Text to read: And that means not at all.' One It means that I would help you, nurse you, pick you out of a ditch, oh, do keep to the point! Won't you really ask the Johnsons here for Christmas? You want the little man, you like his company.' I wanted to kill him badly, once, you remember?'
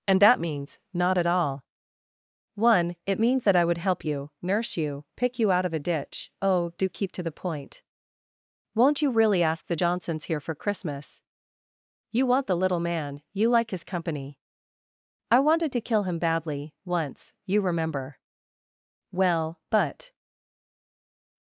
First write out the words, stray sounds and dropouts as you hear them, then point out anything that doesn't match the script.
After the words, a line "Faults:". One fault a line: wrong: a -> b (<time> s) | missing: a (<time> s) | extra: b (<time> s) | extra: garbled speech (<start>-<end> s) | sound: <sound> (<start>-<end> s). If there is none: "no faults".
And that means not at all.' One It means that I would help you, nurse you, pick you out of a ditch, oh, do keep to the point! Won't you really ask the Johnsons here for Christmas? You want the little man, you like his company.' I wanted to kill him badly, once, you remember?' Well, but
Faults:
extra: Well but (19.1 s)